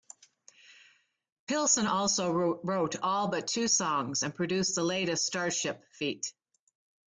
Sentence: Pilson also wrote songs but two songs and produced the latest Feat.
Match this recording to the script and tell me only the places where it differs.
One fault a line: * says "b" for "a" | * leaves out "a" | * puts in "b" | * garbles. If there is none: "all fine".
* says "all" for "songs"
* puts in "Starship"